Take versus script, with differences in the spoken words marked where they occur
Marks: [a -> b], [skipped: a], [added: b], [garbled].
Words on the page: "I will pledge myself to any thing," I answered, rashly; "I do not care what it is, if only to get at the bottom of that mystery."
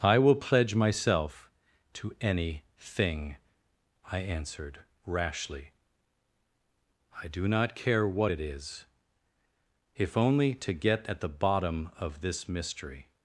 "I will pledge myself to any thing," I answered, rashly; "I do not care what it is, if only to get at the bottom of [that -> this] mystery."